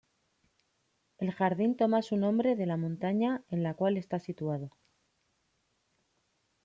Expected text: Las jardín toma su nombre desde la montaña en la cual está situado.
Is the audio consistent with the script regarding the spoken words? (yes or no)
no